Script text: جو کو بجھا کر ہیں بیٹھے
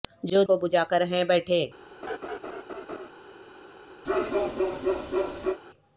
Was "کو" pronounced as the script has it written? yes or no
yes